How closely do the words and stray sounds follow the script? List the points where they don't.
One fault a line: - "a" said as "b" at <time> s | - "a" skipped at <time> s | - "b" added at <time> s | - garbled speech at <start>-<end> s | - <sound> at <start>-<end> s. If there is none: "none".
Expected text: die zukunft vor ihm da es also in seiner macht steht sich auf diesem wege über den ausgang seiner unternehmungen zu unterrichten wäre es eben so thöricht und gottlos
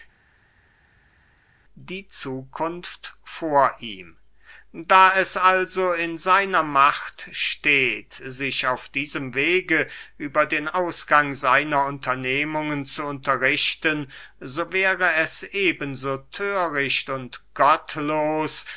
- "so" added at 14.4 s